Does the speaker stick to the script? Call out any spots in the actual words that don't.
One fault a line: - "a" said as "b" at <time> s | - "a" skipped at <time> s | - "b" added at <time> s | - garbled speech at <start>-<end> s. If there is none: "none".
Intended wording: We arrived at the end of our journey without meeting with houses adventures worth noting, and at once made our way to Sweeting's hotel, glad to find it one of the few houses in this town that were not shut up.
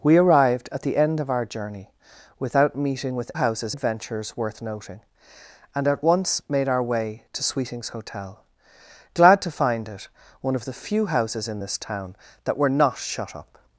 none